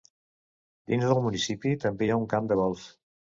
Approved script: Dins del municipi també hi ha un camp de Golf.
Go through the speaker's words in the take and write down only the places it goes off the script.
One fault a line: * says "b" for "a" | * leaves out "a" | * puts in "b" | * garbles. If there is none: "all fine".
all fine